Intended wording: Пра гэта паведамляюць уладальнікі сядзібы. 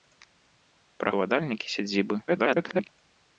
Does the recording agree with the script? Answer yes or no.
no